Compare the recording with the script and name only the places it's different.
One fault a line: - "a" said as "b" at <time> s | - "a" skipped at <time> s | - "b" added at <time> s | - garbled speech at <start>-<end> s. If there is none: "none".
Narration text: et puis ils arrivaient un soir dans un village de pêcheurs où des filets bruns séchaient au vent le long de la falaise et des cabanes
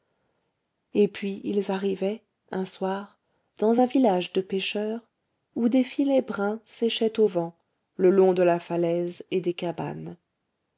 none